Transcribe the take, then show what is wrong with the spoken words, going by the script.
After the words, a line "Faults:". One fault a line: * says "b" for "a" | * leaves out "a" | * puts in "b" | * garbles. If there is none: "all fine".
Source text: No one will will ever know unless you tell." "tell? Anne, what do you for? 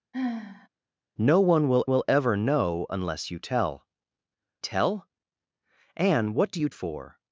No one will will ever know unless you tell." "tell? Anne, what do you for?
Faults:
all fine